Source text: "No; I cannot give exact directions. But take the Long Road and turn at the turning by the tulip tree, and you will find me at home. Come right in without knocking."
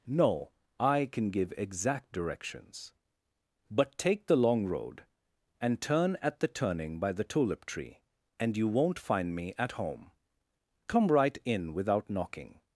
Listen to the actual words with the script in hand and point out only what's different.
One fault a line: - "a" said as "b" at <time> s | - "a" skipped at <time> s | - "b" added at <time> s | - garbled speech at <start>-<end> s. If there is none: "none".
- "cannot" said as "can" at 1.1 s
- "will" said as "won't" at 8.7 s